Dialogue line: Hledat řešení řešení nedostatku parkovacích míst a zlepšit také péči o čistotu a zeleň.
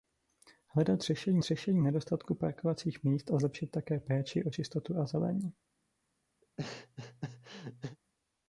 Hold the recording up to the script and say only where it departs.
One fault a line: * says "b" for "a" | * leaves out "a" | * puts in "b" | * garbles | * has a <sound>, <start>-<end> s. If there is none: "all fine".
* has a laugh, 6.4-8.0 s